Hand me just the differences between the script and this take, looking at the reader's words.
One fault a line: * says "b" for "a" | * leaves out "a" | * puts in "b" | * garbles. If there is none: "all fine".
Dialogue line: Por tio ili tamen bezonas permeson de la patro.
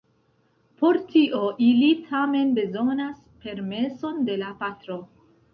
all fine